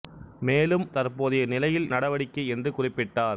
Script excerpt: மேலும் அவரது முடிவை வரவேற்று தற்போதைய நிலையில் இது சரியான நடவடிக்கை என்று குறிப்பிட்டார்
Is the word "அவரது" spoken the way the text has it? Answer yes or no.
no